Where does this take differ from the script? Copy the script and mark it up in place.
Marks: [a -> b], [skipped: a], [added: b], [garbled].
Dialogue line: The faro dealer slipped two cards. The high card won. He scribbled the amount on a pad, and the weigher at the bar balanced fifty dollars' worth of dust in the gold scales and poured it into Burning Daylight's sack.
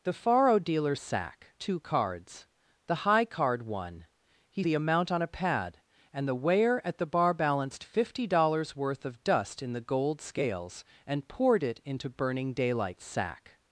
The faro dealer [slipped -> sack] two cards. The high card won. He [skipped: scribbled] the amount on a pad, and the weigher at the bar balanced fifty dollars' worth of dust in the gold scales and poured it into Burning Daylight's sack.